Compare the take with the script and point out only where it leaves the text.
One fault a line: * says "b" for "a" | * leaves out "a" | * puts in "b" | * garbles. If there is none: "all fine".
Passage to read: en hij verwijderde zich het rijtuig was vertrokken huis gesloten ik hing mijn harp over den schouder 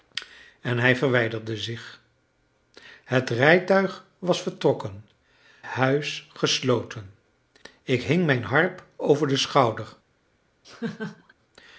all fine